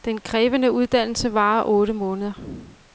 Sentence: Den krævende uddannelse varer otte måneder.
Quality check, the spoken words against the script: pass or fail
pass